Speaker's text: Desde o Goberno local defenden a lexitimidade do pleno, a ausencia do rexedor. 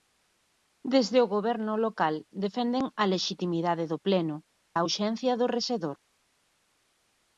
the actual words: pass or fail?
pass